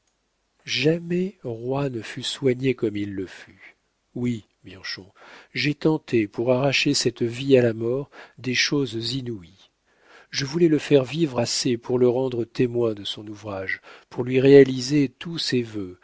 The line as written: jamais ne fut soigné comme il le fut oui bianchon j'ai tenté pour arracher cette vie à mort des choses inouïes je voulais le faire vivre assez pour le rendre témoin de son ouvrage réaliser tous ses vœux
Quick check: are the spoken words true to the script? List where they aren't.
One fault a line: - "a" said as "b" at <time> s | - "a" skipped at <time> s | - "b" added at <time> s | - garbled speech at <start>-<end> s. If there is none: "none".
- "roi" added at 1.4 s
- "la" added at 7.6 s
- "pour lui" added at 14.1 s